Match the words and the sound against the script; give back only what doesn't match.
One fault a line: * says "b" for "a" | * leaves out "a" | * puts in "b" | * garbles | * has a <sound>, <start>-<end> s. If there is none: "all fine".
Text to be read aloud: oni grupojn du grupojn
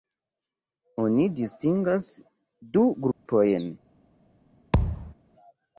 * says "distingas" for "grupojn"
* has a dropout, 3.1-3.3 s
* has a thud, 4.7-5.1 s